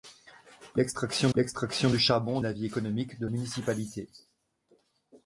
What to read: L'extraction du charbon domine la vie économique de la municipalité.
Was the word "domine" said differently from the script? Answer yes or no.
yes